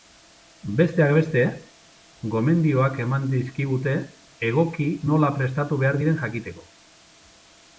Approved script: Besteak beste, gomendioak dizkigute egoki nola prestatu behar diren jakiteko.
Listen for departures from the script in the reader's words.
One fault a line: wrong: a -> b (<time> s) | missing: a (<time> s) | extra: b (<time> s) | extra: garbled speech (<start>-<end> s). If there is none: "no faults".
extra: eman (3.0 s)